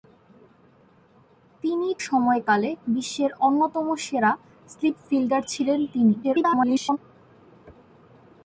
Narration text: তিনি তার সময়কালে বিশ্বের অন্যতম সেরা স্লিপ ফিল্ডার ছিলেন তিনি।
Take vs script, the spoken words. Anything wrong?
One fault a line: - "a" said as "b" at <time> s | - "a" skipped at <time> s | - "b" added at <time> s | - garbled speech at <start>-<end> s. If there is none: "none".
- "তার" skipped at 1.9 s
- garbled speech at 6.2-7.0 s